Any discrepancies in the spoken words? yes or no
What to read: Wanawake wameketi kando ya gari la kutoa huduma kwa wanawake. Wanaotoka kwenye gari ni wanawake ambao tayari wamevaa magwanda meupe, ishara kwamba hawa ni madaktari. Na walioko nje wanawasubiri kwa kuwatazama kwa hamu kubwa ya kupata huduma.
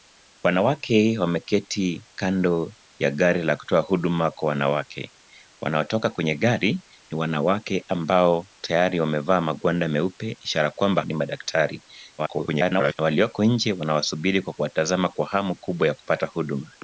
yes